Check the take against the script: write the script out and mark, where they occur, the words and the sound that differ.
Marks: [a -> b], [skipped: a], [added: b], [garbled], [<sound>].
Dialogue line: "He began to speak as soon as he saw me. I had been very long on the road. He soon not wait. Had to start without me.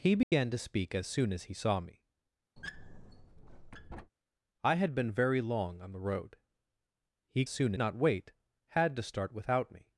"He began [dropout] to speak as soon as he saw me. [squeak] I had been very long on the road. He soon not wait. Had to start without me.